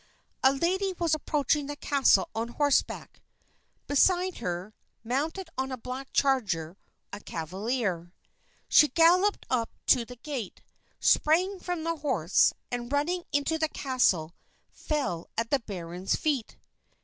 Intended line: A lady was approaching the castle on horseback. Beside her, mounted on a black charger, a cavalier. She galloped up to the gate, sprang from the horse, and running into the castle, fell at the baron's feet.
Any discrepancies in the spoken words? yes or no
no